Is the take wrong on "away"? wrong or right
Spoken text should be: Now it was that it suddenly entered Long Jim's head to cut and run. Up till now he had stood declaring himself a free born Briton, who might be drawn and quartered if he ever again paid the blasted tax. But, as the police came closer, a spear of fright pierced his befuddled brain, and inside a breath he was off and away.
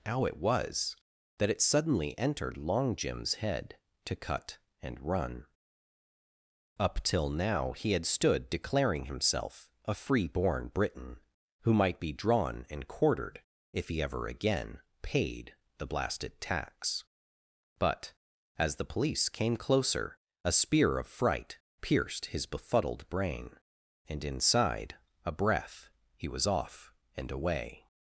right